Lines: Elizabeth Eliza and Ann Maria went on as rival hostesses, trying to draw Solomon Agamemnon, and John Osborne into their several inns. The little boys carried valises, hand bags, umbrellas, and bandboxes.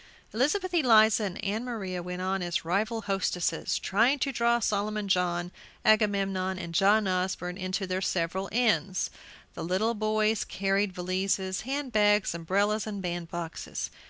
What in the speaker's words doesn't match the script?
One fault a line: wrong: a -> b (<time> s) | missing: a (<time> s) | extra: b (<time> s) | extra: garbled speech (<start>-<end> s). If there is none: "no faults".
extra: John (5.1 s)